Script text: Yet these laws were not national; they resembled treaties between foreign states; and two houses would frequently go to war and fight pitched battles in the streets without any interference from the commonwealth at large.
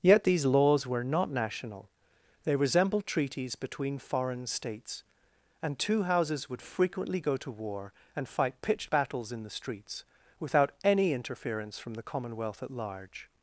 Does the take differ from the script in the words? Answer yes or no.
no